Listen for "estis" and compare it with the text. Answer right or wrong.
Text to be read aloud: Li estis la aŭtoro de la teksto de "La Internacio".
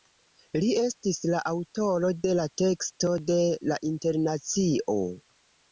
right